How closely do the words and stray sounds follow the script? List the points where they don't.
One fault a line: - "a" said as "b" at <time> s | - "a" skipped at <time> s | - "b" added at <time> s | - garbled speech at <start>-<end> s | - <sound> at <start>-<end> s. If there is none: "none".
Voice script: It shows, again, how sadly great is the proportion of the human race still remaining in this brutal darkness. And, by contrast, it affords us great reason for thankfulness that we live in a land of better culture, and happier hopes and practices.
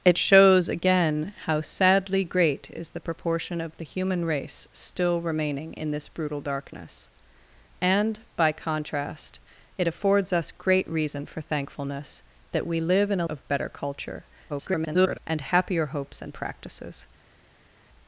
- "land" skipped at 13.3 s
- garbled speech at 14.5-15.2 s